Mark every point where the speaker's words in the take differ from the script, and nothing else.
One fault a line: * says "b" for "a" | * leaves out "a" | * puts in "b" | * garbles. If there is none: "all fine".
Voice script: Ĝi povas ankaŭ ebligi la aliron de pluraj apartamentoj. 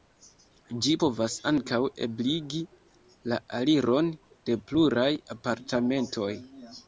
all fine